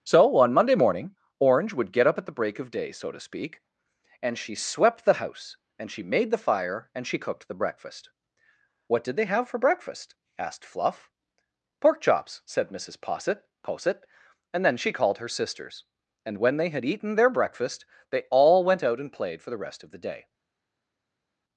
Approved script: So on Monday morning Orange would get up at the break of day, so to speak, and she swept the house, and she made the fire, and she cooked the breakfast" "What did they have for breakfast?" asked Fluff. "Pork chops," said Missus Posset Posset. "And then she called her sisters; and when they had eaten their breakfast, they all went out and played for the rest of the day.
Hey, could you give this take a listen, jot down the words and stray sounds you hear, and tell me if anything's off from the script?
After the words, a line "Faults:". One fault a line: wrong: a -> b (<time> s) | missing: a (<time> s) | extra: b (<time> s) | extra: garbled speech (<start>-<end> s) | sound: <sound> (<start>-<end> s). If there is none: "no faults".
So on Monday morning Orange would get up at the break of day, so to speak, and she swept the house, and she made the fire, and she cooked the breakfast" "What did they have for breakfast?" asked Fluff. "Pork chops," said Missus Posset Posset. "And then she called her sisters; and when they had eaten their breakfast, they all went out and played for the rest of the day.
Faults:
no faults